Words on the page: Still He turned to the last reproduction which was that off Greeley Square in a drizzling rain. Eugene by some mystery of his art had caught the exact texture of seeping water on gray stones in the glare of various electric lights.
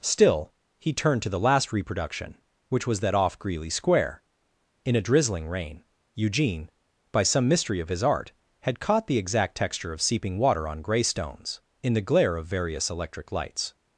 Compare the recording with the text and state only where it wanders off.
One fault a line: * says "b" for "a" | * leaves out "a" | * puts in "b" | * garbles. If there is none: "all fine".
all fine